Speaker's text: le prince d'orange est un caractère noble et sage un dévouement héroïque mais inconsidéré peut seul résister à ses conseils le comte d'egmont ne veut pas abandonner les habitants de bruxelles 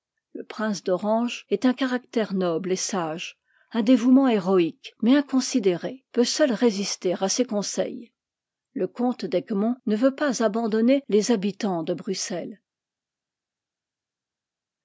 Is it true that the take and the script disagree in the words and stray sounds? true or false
false